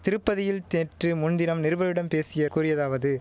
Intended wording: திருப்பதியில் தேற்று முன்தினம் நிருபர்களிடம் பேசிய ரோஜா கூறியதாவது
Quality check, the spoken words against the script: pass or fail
fail